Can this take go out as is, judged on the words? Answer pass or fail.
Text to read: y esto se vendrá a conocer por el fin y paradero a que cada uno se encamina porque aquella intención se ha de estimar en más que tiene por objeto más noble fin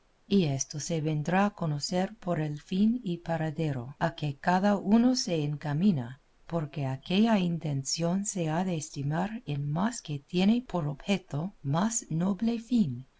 pass